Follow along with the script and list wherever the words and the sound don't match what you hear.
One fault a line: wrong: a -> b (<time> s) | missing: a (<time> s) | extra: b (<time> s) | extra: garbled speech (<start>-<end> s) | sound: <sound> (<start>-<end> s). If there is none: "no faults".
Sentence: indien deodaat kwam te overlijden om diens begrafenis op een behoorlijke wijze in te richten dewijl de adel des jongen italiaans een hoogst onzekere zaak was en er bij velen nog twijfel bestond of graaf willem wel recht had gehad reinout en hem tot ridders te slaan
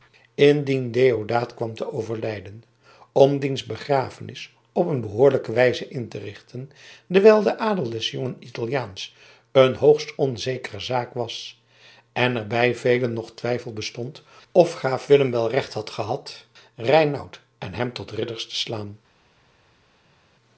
no faults